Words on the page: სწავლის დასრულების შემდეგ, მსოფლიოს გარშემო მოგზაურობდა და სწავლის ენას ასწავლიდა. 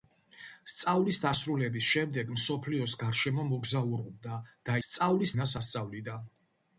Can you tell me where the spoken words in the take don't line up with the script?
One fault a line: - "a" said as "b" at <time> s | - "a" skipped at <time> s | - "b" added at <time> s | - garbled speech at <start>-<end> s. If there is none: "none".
none